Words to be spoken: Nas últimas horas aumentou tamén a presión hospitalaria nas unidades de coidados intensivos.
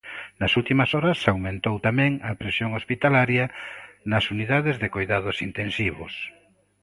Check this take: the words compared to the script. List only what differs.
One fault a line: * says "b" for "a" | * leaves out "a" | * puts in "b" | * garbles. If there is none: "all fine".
all fine